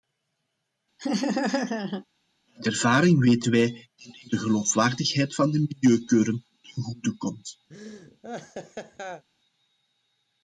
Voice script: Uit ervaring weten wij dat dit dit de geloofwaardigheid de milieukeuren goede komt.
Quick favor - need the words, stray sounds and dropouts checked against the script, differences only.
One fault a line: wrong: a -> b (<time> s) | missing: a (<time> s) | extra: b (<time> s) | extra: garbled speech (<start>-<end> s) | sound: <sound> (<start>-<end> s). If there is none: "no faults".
sound: laugh (1.0-2.1 s)
missing: dit (4.3 s)
extra: van (5.4 s)
extra: ten (6.6 s)
sound: laugh (7.7-9.2 s)